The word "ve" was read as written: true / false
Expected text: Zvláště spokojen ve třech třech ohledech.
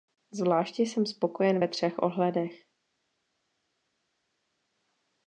true